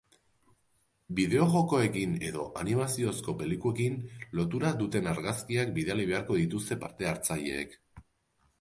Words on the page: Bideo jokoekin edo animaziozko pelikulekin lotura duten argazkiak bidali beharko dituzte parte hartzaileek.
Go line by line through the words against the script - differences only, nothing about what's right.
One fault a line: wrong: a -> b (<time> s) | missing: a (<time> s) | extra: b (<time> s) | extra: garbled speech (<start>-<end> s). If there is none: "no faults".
no faults